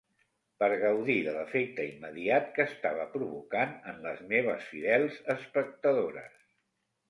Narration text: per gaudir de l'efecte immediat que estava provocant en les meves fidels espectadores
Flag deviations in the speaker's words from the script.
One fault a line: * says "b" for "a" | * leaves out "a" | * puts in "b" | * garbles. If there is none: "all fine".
all fine